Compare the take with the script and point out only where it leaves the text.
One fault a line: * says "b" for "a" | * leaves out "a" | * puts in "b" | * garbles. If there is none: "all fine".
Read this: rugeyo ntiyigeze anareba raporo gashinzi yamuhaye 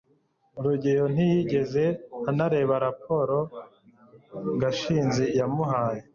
all fine